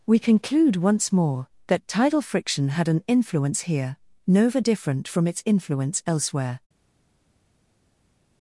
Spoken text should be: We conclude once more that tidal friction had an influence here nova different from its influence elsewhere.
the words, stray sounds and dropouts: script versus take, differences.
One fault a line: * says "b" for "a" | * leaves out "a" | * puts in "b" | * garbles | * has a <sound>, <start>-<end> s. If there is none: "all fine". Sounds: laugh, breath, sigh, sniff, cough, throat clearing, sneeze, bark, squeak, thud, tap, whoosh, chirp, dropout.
all fine